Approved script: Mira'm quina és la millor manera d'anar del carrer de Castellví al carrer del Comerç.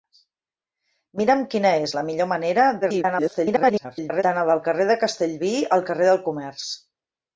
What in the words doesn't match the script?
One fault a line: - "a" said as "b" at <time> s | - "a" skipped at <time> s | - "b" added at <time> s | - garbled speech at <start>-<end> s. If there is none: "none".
- garbled speech at 2.8-4.2 s